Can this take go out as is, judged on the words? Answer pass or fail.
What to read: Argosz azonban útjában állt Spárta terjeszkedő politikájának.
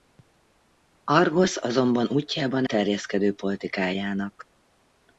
fail